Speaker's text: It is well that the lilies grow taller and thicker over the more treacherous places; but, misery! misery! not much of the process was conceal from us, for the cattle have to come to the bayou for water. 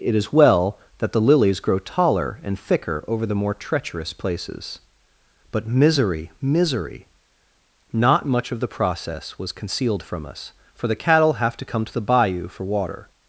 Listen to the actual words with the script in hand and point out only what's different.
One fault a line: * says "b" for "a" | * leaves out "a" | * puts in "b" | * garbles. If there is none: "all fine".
* says "concealed" for "conceal"